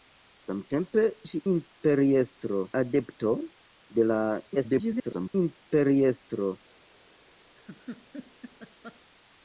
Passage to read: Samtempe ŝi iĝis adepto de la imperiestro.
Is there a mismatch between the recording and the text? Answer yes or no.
yes